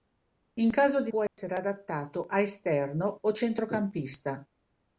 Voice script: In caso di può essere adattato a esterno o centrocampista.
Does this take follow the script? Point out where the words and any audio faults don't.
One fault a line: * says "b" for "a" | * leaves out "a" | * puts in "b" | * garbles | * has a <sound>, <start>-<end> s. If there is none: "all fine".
* has a dropout, 1.3-1.4 s